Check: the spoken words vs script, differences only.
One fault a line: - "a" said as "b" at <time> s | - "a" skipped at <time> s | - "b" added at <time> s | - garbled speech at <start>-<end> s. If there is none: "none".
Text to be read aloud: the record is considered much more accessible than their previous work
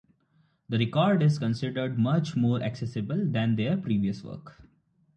none